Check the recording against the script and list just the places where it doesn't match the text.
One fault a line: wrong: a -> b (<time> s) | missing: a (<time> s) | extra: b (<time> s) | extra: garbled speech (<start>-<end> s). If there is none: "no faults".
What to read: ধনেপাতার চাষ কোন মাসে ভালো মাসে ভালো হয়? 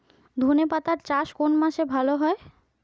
missing: মাসে ভালো (2.1 s)